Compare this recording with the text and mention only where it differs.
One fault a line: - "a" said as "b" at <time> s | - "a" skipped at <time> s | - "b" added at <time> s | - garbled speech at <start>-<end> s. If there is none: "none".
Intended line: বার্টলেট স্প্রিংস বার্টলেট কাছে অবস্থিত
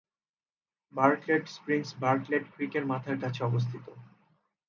- "ক্রিকের মাথার" added at 2.5 s